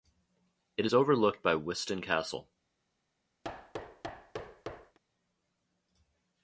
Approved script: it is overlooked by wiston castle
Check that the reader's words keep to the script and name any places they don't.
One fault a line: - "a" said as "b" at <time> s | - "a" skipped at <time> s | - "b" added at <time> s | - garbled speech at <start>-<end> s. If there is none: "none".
none